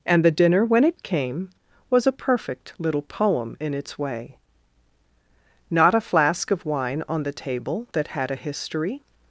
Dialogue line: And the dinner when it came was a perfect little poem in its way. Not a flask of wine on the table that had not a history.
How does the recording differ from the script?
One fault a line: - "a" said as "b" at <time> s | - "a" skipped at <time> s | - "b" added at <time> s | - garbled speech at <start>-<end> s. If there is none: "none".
- "not" skipped at 8.3 s